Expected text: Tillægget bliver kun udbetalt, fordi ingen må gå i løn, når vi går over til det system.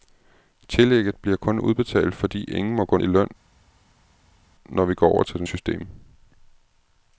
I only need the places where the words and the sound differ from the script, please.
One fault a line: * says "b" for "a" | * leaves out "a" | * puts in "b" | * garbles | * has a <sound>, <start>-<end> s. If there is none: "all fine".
all fine